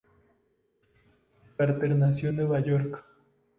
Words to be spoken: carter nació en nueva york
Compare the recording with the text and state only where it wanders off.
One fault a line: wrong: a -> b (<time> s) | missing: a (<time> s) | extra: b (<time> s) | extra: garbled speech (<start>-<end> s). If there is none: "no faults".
no faults